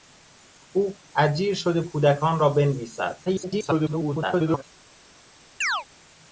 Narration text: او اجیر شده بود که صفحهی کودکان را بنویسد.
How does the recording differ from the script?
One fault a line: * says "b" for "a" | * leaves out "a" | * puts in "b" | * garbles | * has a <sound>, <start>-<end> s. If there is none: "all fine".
* leaves out "بود که صفحهی"
* garbles
* has a chirp, 5.6-5.9 s